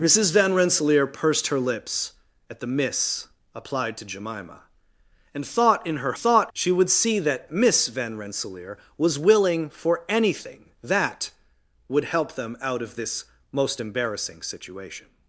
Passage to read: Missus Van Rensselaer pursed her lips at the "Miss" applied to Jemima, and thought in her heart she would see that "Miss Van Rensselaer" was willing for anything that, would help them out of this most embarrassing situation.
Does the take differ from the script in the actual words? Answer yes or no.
yes